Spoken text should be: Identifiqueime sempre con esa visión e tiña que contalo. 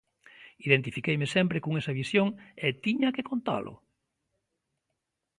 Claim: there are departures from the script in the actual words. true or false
false